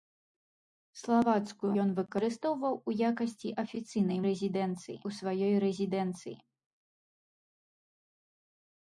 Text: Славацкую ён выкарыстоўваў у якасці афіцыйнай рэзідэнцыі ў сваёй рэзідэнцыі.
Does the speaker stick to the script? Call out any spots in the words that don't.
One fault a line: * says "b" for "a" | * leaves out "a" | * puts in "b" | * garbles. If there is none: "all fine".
all fine